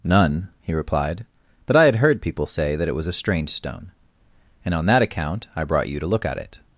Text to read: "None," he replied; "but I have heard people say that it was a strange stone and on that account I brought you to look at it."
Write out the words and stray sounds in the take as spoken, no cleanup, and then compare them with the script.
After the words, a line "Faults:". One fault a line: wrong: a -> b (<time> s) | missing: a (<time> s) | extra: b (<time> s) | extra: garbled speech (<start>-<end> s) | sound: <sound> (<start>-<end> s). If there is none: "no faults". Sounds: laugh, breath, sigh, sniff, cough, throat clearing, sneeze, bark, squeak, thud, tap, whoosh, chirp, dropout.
"None," he replied; "but I had heard people say that it was a strange stone and on that account I brought you to look at it."
Faults:
wrong: have -> had (1.8 s)